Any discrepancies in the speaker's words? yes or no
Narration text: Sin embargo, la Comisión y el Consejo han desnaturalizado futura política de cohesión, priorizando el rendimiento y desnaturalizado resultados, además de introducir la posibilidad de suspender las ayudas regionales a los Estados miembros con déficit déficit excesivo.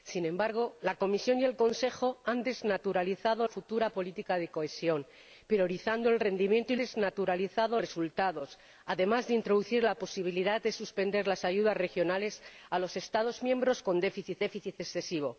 no